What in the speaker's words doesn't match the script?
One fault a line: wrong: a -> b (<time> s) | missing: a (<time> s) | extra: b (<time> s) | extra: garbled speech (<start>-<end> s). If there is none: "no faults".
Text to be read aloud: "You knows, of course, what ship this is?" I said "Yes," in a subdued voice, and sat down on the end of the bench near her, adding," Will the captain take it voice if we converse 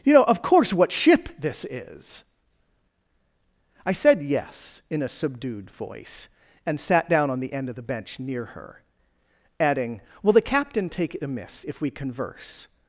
wrong: knows -> know (0.1 s)
wrong: voice -> amiss (11.2 s)